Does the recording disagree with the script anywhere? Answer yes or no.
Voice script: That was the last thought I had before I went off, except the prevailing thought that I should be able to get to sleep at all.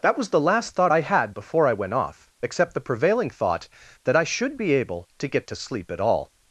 no